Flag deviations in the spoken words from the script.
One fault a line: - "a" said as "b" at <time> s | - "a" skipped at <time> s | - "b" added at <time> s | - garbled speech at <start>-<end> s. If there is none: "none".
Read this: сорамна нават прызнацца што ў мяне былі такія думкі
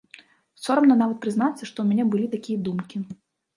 none